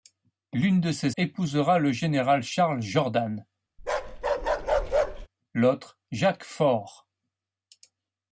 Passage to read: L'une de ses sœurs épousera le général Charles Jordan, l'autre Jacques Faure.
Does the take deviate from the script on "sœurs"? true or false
true